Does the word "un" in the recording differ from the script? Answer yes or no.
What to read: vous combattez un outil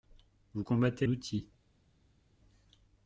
yes